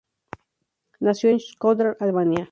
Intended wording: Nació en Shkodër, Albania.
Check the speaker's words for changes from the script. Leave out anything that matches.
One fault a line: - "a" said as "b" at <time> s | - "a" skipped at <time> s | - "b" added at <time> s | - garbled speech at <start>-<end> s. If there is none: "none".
none